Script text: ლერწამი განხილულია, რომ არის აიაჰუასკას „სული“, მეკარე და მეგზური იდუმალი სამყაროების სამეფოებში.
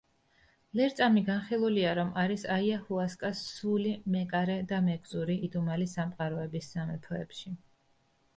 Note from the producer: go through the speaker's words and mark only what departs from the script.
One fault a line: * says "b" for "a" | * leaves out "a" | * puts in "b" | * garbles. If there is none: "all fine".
all fine